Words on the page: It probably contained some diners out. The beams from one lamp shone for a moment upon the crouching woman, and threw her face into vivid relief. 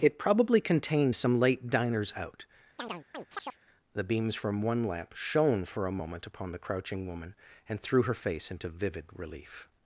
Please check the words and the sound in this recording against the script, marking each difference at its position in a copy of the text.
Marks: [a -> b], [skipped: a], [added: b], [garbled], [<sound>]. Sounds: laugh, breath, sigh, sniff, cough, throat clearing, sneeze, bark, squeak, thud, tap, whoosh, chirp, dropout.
It probably contained some [added: late] diners out. [chirp] The beams from one lamp shone for a moment upon the crouching woman, and threw her face into vivid relief.